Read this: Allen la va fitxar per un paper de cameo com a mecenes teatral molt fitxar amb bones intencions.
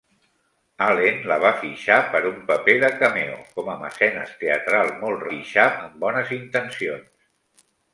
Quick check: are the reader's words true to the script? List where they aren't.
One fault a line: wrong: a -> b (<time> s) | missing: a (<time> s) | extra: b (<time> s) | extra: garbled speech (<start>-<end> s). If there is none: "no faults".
no faults